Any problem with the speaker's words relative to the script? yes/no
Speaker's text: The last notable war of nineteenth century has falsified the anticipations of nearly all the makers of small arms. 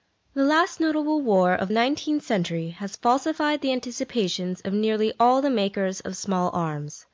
no